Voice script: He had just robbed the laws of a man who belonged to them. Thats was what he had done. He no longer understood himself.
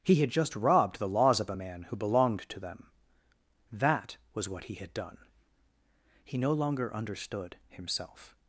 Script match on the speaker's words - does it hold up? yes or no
no